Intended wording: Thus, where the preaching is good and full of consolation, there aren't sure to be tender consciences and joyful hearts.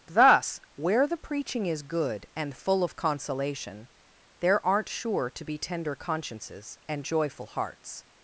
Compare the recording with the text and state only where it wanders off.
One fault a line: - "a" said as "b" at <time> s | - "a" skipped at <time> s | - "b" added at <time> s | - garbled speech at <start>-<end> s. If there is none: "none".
none